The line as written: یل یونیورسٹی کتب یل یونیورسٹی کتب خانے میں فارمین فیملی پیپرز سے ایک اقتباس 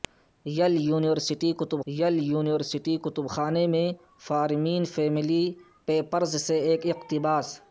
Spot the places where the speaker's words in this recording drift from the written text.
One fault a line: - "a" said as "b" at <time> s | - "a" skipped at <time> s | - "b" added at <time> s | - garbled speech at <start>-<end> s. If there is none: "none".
none